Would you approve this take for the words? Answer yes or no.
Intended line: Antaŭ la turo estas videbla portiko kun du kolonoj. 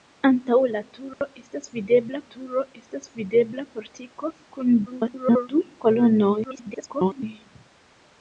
no